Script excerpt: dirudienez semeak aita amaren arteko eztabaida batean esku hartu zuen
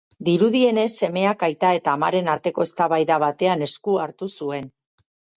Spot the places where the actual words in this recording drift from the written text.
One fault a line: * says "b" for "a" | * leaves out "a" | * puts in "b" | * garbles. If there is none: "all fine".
* puts in "eta"